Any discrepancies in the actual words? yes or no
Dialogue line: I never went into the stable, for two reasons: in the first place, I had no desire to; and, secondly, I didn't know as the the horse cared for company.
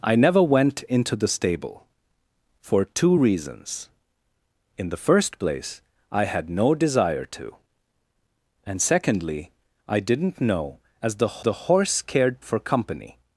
no